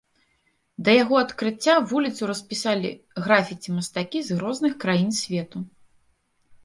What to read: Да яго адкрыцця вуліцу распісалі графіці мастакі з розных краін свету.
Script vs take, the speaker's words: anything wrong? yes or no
no